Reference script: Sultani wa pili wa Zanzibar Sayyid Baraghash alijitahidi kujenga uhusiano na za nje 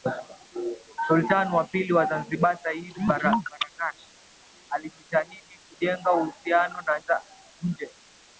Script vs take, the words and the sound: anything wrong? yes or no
no